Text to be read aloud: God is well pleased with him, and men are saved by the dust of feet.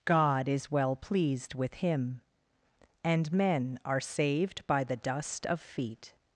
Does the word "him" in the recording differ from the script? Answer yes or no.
no